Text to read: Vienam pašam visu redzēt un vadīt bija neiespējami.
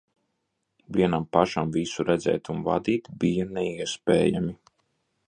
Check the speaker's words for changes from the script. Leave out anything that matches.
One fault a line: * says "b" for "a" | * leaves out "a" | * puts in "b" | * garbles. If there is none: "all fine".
all fine